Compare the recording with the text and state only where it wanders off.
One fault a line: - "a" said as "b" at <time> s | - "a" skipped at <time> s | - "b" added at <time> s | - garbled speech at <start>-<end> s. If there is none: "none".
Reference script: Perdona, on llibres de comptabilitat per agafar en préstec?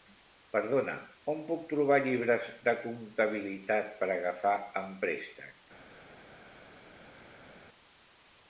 - "puc trobar" added at 1.5 s